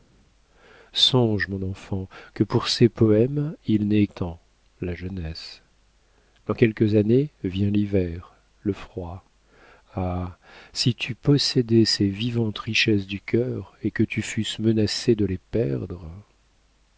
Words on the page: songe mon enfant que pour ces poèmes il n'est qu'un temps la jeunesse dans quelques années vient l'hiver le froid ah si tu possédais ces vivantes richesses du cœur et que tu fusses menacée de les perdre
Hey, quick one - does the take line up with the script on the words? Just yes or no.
no